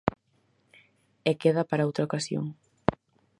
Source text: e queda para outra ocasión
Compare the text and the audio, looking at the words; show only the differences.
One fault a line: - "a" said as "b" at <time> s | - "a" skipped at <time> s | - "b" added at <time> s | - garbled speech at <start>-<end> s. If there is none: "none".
none